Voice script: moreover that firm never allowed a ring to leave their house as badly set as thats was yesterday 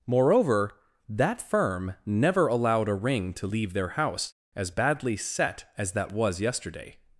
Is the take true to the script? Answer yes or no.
no